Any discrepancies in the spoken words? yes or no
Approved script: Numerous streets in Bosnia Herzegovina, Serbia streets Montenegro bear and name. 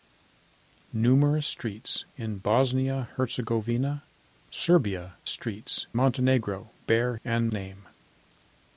no